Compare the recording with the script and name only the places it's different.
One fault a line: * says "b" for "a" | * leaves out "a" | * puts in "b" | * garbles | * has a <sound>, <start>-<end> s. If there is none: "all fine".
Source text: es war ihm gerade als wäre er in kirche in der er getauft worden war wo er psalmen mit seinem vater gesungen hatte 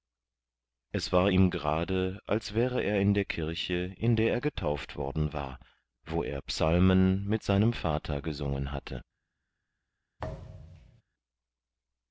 * puts in "der"
* has a thud, 10.2-11.0 s